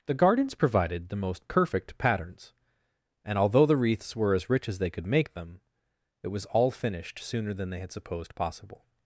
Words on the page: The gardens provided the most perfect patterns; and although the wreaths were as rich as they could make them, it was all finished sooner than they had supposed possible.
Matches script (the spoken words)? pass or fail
pass